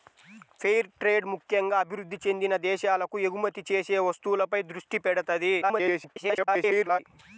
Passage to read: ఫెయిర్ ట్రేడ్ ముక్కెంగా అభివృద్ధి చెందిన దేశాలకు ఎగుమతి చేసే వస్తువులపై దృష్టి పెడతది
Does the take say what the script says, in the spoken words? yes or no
no